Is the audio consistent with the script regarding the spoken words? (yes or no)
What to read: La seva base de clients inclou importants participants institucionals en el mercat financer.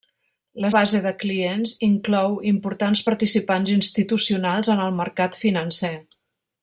no